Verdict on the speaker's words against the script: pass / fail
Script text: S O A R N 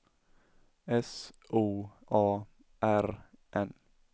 pass